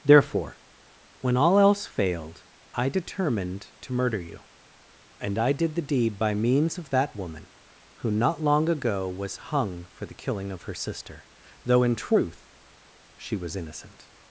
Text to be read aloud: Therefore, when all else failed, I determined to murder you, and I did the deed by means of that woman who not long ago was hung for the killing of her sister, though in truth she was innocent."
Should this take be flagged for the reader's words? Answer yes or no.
no